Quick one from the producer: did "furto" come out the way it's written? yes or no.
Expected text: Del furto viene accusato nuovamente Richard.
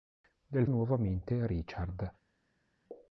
no